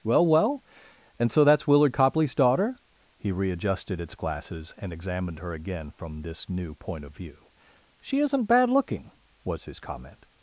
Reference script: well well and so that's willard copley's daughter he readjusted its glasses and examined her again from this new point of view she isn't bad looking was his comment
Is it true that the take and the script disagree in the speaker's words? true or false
false